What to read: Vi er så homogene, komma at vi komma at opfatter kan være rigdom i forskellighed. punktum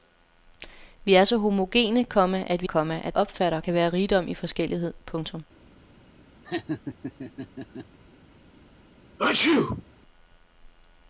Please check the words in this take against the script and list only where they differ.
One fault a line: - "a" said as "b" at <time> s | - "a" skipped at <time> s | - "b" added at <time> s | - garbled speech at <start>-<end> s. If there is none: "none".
none